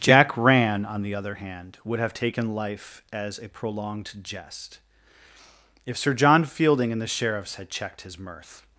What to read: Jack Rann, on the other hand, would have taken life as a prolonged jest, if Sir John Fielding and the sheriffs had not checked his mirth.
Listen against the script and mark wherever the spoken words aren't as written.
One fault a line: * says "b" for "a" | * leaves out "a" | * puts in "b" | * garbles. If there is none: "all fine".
* leaves out "not"